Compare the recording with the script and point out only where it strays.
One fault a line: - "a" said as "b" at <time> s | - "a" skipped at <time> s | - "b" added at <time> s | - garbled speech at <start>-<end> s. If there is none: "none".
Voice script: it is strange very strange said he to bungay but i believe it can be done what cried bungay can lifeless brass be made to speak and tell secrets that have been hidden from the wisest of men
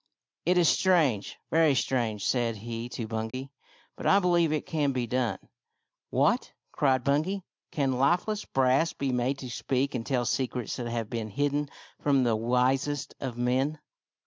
none